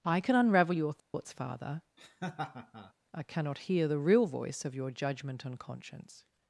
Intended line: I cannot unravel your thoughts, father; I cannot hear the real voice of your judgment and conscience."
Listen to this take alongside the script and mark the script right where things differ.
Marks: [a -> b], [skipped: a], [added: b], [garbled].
I [cannot -> can] unravel your thoughts, father; I cannot hear the real voice of your judgment and conscience."